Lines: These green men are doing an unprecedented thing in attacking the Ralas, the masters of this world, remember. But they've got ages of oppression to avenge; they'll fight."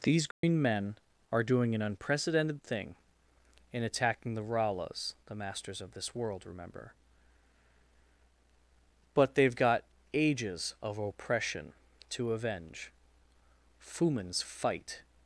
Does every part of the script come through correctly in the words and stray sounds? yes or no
no